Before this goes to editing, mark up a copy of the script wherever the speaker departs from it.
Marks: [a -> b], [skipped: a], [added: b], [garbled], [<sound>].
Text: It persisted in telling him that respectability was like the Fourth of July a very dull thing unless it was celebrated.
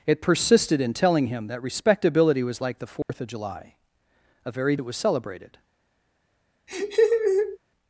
It persisted in telling him that respectability was like the Fourth [dropout] of July a very [skipped: dull thing unless] it was celebrated. [laugh]